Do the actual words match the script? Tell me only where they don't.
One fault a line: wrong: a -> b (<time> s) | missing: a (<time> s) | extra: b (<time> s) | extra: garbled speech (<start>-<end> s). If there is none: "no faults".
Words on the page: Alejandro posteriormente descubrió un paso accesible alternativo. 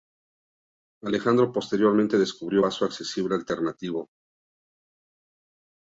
missing: un (2.6 s)